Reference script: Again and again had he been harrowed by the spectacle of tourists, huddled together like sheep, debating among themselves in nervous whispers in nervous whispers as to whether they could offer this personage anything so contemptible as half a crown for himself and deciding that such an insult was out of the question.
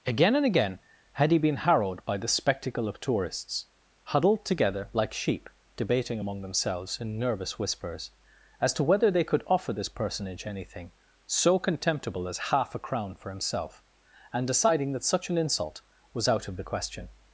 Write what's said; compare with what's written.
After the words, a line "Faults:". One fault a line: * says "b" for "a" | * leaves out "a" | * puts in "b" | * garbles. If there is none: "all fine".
Again and again had he been harrowed by the spectacle of tourists, huddled together like sheep, debating among themselves in nervous whispers as to whether they could offer this personage anything so contemptible as half a crown for himself and deciding that such an insult was out of the question.
Faults:
* leaves out "in nervous whispers"